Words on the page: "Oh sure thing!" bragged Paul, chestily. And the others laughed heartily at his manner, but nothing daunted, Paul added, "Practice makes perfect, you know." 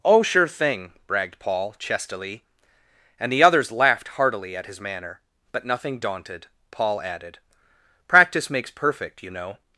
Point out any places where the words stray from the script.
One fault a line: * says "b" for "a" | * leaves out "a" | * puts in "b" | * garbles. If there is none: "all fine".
all fine